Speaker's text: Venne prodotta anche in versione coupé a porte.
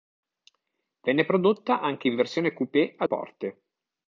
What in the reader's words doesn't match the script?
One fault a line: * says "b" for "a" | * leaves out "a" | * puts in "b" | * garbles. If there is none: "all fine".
all fine